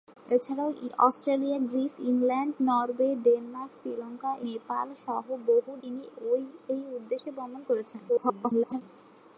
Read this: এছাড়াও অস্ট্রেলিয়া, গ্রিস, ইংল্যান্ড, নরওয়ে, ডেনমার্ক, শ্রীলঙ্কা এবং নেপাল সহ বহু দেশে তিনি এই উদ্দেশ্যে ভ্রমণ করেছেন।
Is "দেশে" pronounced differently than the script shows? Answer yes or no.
yes